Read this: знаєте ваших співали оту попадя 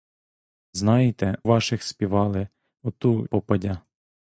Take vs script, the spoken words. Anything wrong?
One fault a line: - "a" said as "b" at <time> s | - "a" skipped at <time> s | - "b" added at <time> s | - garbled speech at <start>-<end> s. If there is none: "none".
none